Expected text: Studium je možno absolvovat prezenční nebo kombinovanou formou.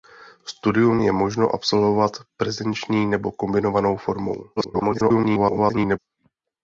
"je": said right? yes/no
yes